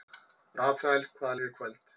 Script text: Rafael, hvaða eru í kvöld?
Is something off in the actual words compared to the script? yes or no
no